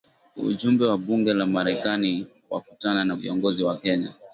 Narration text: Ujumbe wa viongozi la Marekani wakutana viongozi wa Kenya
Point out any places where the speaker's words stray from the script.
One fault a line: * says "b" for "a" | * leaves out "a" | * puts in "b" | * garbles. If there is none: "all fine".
* says "bunge" for "viongozi"
* puts in "na"